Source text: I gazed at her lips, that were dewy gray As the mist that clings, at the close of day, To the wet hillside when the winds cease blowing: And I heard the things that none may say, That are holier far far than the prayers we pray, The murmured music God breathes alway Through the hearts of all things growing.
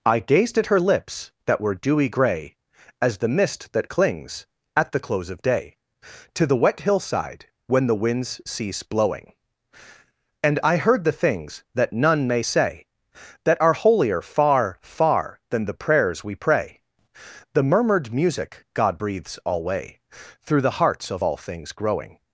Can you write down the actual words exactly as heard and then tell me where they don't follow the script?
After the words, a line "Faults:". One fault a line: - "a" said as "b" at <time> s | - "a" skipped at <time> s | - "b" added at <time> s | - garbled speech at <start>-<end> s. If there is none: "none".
I gazed at her lips, that were dewy gray As the mist that clings, at the close of day, To the wet hillside when the winds cease blowing: And I heard the things that none may say, That are holier far far than the prayers we pray, The murmured music God breathes alway Through the hearts of all things growing.
Faults:
none